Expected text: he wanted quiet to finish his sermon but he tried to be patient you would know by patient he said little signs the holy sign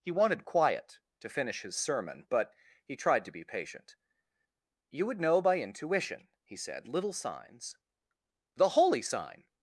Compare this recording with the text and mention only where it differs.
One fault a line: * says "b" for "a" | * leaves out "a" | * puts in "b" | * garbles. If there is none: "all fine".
* says "intuition" for "patient"